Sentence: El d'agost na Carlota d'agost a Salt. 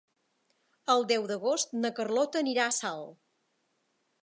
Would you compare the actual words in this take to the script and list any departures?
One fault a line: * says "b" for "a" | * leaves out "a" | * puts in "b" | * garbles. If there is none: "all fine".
* puts in "deu"
* says "anirà" for "d'agost"